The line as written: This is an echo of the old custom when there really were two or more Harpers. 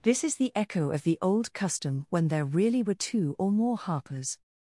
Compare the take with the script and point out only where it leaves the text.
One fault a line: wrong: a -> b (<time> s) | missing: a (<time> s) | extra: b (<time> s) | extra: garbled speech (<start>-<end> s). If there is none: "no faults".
wrong: an -> the (0.4 s)